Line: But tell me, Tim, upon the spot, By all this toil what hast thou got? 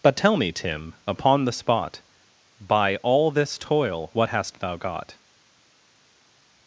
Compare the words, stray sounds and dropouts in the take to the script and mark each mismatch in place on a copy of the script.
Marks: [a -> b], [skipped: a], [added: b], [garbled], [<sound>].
But tell me, Tim, upon the spot, By all this toil what hast thou got?